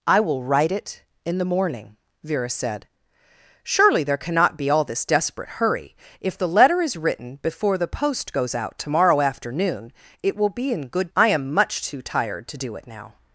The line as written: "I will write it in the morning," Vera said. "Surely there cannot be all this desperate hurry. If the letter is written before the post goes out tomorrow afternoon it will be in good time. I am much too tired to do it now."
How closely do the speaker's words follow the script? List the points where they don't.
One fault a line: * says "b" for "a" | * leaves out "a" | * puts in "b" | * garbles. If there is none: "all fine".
* leaves out "time"